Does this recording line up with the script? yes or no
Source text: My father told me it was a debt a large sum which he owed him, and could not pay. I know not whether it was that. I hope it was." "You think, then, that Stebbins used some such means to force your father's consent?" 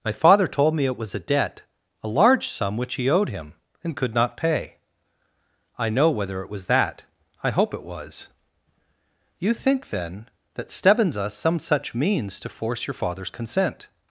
no